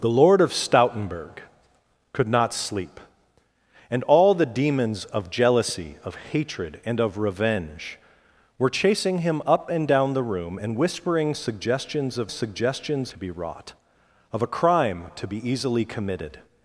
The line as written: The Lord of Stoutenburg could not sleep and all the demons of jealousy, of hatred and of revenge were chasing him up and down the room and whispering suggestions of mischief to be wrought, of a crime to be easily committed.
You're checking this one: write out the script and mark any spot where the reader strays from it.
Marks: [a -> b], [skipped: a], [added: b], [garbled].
The Lord of Stoutenburg could not sleep and all the demons of jealousy, of hatred and of revenge were chasing him up and down the room and whispering suggestions of [mischief -> suggestions] to be wrought, of a crime to be easily committed.